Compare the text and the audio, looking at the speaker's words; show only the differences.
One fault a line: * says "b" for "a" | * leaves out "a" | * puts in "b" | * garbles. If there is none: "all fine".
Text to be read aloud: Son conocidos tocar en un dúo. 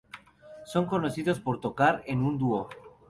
* puts in "por"